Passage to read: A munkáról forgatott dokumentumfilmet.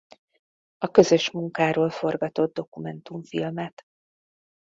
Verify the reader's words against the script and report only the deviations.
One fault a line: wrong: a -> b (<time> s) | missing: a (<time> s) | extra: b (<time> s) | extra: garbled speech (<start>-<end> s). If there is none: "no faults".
extra: közös (0.9 s)